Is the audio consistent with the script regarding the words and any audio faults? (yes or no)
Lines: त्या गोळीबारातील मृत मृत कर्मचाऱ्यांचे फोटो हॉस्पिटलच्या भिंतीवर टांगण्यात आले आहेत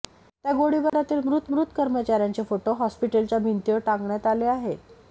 no